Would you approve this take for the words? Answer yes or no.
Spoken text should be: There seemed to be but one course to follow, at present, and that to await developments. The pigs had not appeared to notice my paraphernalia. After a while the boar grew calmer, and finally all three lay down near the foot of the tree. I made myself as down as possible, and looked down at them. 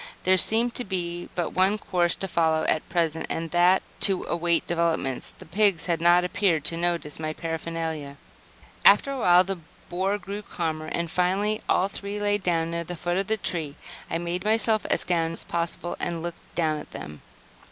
yes